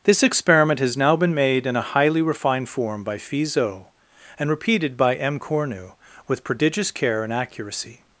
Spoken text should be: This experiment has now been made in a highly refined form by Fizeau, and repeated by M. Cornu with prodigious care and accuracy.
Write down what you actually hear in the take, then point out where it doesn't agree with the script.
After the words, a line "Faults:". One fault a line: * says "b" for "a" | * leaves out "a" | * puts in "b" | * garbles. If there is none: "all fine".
This experiment has now been made in a highly refined form by Fizeau, and repeated by M. Cornu with prodigious care and accuracy.
Faults:
all fine